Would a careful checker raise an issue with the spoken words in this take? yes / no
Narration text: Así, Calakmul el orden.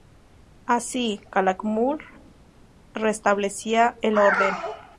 yes